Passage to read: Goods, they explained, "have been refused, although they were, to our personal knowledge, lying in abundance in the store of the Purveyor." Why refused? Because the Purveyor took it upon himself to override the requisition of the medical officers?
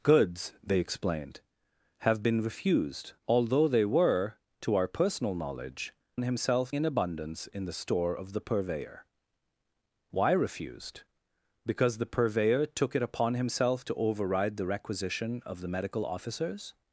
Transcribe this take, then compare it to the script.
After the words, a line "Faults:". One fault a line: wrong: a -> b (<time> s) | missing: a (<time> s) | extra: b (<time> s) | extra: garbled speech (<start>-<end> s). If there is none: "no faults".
Goods, they explained, "have been refused, although they were, to our personal knowledge, himself in abundance in the store of the Purveyor." Why refused? Because the Purveyor took it upon himself to override the requisition of the medical officers?
Faults:
wrong: lying -> himself (6.2 s)